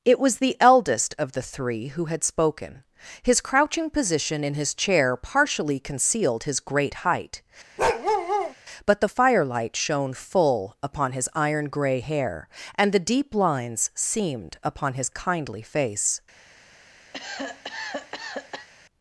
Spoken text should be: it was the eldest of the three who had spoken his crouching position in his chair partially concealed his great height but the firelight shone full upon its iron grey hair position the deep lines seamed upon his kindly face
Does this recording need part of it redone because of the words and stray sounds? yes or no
yes